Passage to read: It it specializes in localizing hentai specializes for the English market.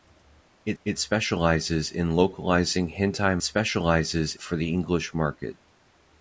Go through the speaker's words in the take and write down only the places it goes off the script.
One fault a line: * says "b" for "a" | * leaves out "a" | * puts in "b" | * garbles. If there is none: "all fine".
all fine